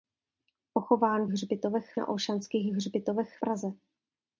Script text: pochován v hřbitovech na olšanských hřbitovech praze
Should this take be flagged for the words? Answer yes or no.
no